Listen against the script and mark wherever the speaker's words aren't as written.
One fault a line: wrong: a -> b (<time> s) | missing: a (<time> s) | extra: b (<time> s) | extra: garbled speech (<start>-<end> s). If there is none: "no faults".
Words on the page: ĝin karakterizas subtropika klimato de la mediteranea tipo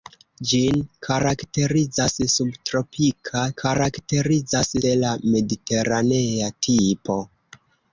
wrong: klimato -> karakterizas (3.6 s)